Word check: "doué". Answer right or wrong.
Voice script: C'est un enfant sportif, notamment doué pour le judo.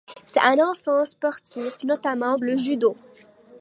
wrong